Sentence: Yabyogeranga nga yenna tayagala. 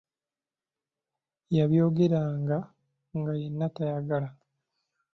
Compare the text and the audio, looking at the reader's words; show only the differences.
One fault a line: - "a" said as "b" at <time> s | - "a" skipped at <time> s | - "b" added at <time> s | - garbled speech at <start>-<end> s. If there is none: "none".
none